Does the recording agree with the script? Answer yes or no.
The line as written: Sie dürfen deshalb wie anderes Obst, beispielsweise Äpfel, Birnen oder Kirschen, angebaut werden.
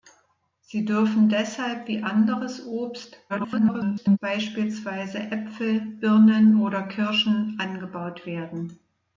no